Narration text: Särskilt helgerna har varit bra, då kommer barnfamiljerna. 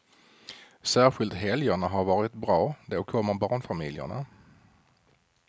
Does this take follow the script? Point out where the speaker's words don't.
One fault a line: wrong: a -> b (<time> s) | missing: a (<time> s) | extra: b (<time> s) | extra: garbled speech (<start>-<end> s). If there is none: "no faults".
no faults